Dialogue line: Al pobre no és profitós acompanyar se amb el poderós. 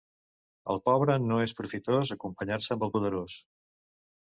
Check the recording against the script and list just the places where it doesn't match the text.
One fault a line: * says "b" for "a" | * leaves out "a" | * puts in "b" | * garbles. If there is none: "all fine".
all fine